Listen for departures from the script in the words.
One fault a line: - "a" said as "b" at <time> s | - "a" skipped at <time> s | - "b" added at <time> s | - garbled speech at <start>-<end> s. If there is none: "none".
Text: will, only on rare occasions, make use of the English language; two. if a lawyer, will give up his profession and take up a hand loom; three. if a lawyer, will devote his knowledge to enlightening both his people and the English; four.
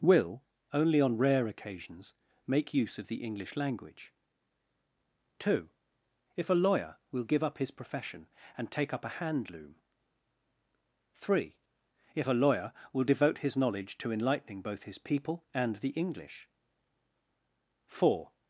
none